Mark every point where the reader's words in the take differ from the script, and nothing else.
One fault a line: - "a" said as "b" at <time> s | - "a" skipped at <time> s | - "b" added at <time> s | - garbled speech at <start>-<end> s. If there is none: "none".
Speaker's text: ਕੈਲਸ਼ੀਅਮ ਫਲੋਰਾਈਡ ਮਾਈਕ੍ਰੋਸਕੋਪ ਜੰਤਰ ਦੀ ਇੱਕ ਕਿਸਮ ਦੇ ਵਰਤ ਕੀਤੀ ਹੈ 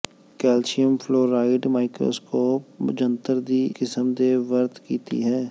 - "ਇੱਕ" skipped at 3.6 s